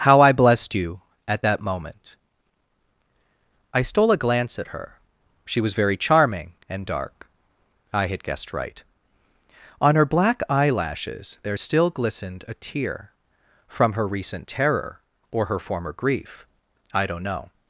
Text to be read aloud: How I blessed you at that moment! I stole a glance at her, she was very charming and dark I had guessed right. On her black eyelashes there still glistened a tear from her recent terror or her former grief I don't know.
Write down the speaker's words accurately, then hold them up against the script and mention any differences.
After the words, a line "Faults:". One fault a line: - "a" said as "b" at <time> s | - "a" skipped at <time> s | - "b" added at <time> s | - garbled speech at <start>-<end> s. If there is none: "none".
How I blessed you at that moment! I stole a glance at her, she was very charming and dark I had guessed right. On her black eyelashes there still glistened a tear from her recent terror or her former grief I don't know.
Faults:
none